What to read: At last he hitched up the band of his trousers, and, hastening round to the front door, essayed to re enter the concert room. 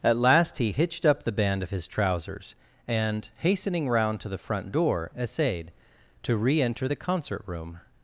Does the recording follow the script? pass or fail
pass